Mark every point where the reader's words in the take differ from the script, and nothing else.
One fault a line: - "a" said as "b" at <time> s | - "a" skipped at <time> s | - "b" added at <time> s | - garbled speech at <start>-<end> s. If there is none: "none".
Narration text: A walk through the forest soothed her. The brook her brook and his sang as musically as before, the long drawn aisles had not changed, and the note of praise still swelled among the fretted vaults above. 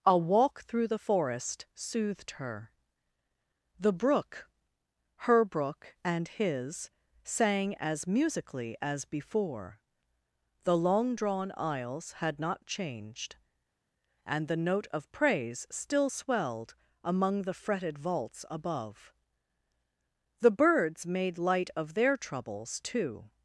- "The birds made light of their troubles too" added at 20.4 s